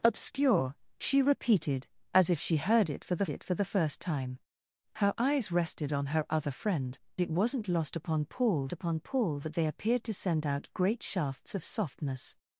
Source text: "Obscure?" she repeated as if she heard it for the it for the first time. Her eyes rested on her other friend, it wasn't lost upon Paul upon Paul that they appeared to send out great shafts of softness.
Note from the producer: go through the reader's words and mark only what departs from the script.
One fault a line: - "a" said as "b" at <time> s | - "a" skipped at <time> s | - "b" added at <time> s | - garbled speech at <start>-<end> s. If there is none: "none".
none